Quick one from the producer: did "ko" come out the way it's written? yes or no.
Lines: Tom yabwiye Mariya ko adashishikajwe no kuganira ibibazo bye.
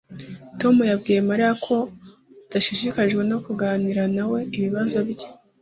yes